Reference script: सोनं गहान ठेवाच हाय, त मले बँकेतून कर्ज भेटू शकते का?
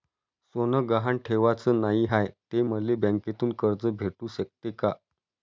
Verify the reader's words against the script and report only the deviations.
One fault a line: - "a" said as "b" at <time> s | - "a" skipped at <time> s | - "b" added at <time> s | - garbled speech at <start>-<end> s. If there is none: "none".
- "नाही" added at 1.8 s